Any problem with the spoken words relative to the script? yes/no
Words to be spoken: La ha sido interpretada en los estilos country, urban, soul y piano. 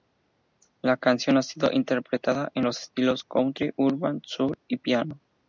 yes